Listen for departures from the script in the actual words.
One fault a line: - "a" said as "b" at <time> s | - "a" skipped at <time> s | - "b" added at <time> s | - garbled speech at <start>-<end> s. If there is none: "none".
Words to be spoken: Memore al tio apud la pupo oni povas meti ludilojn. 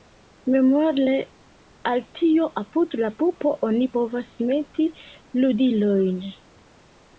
none